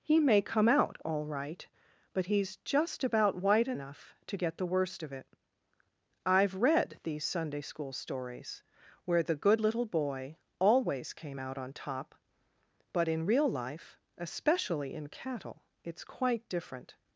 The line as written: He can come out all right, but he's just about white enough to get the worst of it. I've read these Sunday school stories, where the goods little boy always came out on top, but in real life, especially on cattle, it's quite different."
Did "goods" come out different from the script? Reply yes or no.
yes